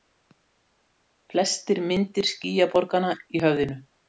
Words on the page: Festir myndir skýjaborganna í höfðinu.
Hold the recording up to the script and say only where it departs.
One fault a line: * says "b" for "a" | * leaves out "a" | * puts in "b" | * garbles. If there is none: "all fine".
all fine